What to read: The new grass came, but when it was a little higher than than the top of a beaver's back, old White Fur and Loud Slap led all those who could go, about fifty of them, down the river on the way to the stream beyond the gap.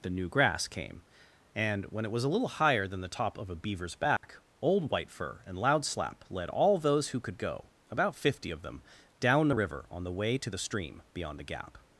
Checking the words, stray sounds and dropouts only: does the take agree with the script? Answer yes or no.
no